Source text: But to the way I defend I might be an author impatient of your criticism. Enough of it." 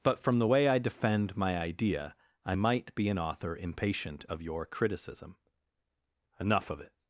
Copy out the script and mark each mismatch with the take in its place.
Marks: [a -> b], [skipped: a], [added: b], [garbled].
But [to -> from] the way I defend [added: my idea] I might be an author impatient of your criticism. Enough of it."